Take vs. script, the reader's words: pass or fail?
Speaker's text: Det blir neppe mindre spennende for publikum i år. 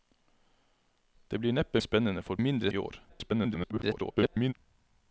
fail